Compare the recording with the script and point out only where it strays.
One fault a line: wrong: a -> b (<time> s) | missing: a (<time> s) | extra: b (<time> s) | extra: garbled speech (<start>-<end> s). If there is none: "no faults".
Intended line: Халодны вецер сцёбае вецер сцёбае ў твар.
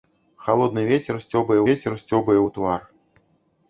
no faults